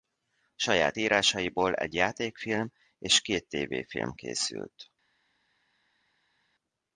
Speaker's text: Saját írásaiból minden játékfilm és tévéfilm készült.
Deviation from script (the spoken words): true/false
true